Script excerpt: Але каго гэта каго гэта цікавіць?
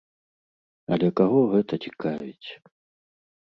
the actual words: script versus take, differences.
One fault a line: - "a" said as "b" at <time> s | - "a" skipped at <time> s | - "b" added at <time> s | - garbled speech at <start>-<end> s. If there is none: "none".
- "каго гэта" skipped at 1.7 s